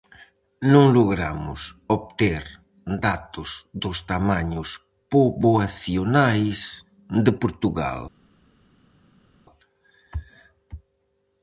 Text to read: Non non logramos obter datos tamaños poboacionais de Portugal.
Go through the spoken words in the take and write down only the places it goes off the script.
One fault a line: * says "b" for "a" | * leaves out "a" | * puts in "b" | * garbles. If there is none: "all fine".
* leaves out "non"
* puts in "dos"